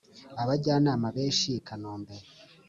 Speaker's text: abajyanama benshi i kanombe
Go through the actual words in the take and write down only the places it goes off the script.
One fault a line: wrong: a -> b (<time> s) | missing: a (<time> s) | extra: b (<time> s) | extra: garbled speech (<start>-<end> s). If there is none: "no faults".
no faults